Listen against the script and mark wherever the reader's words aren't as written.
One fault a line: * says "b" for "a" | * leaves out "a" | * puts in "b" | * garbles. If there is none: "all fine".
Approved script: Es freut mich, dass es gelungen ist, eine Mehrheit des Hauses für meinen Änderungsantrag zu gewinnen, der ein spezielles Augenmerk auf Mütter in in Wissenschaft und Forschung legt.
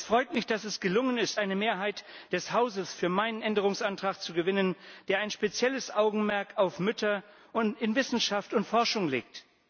* leaves out "in"